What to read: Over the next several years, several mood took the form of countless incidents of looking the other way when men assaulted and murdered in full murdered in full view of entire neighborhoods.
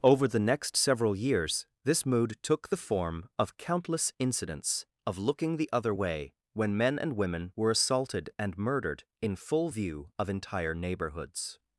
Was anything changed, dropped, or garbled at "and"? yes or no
yes